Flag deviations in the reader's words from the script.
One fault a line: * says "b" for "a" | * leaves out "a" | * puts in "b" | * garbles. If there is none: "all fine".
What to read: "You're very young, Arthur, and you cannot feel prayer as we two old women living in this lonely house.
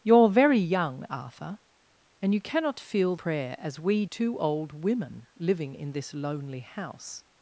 all fine